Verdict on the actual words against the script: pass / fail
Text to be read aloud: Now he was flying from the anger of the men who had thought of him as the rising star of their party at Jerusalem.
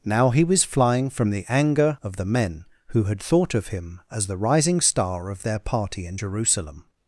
fail